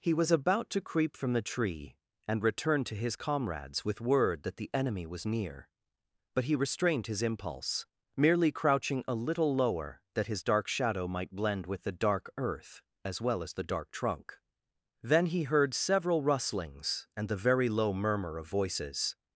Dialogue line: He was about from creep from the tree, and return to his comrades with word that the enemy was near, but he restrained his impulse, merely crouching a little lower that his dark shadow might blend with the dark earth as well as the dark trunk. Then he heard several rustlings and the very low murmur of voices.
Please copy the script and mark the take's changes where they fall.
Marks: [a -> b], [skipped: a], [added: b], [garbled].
He was about [from -> to] creep from the tree, and return to his comrades with word that the enemy was near, but he restrained his impulse, merely crouching a little lower that his dark shadow might blend with the dark earth as well as the dark trunk. Then he heard several rustlings and the very low murmur of voices.